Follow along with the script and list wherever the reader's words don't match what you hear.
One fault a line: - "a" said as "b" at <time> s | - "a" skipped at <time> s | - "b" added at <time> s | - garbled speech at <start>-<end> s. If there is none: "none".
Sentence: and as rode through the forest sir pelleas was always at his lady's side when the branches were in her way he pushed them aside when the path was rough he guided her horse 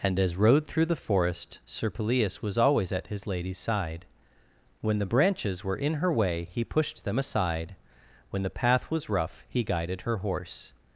none